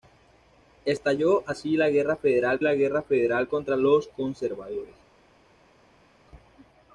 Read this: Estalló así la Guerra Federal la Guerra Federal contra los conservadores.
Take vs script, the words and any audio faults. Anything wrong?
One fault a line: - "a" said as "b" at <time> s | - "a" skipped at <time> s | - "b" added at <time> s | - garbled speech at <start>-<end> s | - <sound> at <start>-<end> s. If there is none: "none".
none